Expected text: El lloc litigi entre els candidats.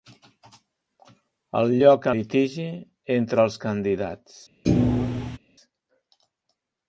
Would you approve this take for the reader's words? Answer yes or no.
yes